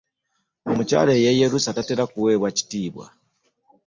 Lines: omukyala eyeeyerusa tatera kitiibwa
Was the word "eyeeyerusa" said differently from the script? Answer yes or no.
no